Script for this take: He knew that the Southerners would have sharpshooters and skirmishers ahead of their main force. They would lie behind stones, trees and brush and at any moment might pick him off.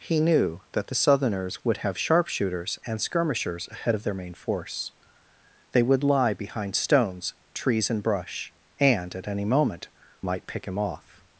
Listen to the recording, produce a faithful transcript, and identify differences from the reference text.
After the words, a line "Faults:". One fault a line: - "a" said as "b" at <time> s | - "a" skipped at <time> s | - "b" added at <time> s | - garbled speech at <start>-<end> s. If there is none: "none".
He knew that the Southerners would have sharpshooters and skirmishers ahead of their main force. They would lie behind stones, trees and brush and at any moment might pick him off.
Faults:
none